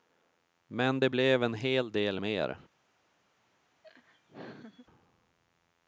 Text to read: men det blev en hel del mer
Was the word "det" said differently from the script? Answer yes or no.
no